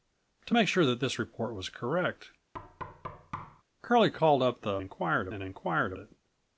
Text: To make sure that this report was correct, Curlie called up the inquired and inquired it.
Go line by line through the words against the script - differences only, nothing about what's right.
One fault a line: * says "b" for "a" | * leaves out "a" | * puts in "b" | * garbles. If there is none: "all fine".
all fine